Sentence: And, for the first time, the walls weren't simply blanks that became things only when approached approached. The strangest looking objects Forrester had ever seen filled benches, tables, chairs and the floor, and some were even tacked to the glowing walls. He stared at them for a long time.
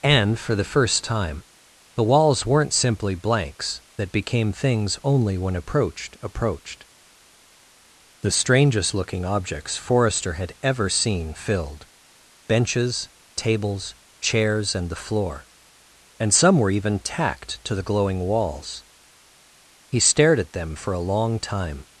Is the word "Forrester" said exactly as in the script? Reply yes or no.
yes